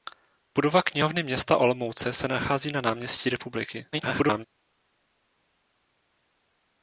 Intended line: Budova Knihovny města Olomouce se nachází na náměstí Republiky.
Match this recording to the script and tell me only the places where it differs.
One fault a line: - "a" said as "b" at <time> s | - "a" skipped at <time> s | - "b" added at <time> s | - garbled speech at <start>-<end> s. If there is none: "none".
- garbled speech at 3.9-4.5 s